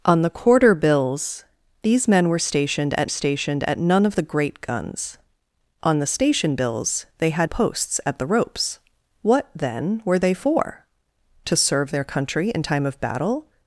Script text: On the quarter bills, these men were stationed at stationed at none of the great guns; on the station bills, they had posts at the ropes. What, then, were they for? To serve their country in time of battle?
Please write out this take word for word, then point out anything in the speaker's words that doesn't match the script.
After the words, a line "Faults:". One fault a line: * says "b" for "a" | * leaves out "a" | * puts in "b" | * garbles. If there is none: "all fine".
On the quarter bills, these men were stationed at stationed at none of the great guns; on the station bills, they had posts at the ropes. What, then, were they for? To serve their country in time of battle?
Faults:
all fine